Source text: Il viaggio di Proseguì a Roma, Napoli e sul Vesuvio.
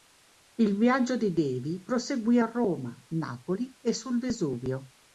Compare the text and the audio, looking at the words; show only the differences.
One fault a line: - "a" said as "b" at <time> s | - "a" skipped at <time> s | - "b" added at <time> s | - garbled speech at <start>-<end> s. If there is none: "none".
- "Davy" added at 1.3 s